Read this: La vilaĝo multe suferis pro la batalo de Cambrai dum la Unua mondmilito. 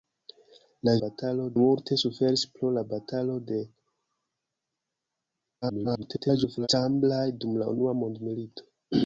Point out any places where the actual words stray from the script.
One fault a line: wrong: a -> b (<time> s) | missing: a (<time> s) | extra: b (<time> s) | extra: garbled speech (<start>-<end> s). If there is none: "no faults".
wrong: vilaĝo -> batalo (1.0 s)
extra: garbled speech (5.6-6.7 s)